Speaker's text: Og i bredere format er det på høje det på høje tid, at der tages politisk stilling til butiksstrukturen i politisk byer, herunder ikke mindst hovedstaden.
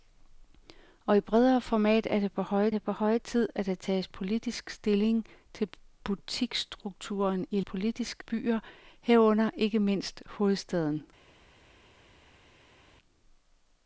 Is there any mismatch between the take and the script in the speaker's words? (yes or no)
no